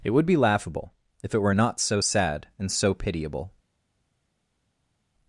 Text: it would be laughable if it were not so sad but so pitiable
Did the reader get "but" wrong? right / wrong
wrong